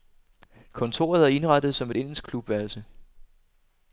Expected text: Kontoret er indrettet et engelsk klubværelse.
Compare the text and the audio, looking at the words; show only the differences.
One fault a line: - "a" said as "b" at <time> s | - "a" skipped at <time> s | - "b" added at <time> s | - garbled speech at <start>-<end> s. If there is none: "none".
- "som" added at 1.8 s